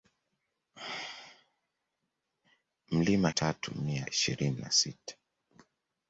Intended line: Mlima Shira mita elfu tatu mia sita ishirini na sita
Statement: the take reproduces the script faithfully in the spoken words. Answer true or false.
false